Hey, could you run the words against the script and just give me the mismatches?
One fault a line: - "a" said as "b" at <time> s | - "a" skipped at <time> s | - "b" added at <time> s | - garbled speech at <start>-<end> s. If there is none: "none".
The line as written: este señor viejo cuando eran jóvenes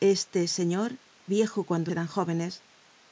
none